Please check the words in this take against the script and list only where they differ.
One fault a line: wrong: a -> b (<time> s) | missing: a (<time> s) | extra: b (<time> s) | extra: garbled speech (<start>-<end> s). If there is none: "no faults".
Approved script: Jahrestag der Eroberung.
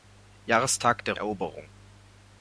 no faults